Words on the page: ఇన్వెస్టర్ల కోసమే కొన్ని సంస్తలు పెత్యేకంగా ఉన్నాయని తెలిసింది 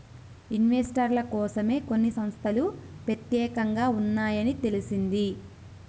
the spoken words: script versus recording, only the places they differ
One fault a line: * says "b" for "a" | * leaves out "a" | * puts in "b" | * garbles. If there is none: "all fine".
all fine